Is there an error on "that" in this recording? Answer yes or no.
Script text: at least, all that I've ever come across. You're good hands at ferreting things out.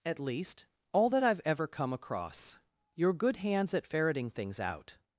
no